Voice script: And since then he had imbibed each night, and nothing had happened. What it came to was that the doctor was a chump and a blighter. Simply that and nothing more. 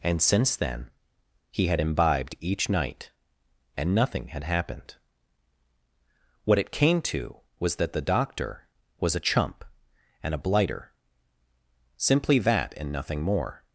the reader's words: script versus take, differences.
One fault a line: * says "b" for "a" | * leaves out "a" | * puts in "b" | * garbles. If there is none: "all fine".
all fine